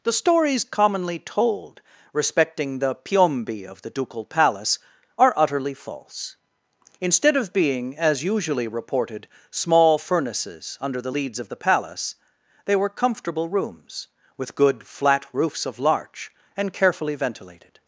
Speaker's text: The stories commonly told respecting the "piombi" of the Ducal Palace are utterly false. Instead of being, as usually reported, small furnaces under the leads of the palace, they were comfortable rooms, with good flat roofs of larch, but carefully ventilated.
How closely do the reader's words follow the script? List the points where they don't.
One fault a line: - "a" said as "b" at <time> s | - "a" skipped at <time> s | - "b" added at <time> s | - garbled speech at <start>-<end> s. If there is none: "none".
- "but" said as "and" at 16.6 s